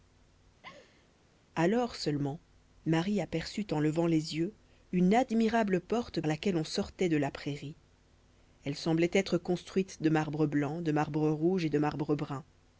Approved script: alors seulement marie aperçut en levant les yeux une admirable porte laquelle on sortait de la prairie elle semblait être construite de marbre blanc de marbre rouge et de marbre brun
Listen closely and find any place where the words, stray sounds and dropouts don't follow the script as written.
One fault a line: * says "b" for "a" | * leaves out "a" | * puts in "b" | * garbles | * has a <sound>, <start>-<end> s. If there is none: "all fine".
* has a laugh, 0.6-1.1 s